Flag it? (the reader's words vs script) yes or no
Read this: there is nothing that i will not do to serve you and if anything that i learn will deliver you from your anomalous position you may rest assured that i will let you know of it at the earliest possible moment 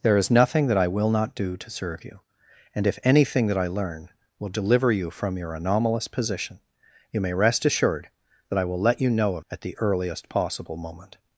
yes